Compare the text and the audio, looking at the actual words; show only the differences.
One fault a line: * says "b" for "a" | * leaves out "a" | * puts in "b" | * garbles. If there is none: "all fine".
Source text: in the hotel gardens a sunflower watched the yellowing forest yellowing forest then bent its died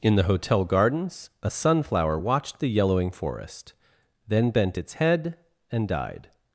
* leaves out "yellowing forest"
* puts in "head and"